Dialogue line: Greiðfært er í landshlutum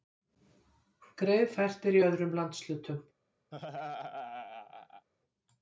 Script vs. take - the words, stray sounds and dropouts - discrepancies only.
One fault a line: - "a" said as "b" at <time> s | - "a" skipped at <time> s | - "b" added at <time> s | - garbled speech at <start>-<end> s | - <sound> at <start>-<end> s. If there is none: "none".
- "öðrum" added at 2.1 s
- laugh at 3.5-5.1 s